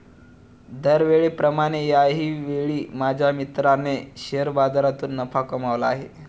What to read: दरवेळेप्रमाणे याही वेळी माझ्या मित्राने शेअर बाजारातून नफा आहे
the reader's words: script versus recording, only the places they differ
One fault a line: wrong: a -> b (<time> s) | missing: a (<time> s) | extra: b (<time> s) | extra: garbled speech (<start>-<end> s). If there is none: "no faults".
extra: कमावला (5.4 s)